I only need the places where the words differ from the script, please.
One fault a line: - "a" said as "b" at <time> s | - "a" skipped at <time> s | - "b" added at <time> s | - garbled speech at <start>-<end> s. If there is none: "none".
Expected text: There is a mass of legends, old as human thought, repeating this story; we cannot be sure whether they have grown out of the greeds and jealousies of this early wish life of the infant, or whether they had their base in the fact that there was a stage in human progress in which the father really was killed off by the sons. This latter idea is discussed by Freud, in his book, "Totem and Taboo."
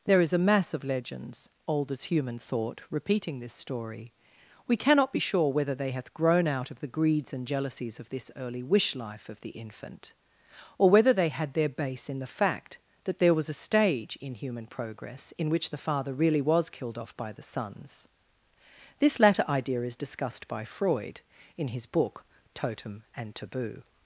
- "have" said as "hath" at 5.9 s